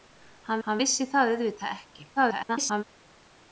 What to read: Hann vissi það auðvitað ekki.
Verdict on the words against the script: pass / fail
fail